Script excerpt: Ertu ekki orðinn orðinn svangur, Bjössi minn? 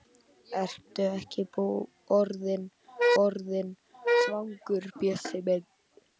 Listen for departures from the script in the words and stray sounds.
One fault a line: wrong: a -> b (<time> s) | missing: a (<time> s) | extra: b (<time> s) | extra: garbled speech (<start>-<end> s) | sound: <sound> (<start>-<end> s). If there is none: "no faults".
no faults